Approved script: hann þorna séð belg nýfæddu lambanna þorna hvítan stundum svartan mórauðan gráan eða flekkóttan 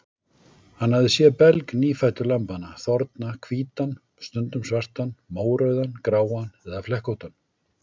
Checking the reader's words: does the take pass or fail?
fail